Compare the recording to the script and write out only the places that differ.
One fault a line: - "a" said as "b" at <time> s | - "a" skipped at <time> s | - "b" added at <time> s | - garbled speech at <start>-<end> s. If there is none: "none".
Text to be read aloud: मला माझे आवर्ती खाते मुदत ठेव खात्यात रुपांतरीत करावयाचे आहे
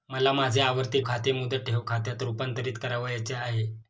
none